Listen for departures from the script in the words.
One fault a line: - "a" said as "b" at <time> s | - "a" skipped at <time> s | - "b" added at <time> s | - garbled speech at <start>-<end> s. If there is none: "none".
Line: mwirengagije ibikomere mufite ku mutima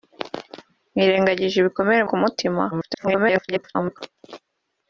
- "mufite" skipped at 2.0 s
- garbled speech at 2.7-4.0 s